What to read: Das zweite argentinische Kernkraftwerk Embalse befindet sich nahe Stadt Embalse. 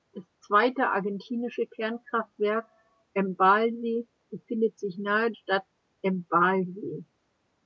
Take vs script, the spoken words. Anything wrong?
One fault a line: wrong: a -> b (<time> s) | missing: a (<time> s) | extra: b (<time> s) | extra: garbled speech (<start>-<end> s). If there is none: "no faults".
no faults